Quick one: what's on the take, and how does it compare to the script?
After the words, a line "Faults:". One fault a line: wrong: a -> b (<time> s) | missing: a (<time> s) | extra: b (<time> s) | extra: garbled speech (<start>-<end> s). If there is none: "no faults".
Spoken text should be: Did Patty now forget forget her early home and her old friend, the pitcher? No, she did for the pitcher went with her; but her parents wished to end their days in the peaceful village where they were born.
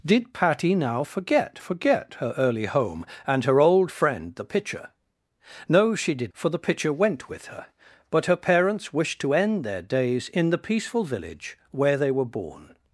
Did Patty now forget forget her early home and her old friend, the pitcher? No, she did for the pitcher went with her; but her parents wished to end their days in the peaceful village where they were born.
Faults:
no faults